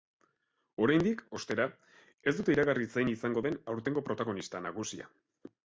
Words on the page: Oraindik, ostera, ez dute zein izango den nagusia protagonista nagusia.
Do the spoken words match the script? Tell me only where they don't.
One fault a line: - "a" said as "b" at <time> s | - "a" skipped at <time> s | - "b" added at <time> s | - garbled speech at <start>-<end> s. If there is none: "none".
- "iragarri" added at 2.6 s
- "nagusia" said as "aurtengo" at 3.8 s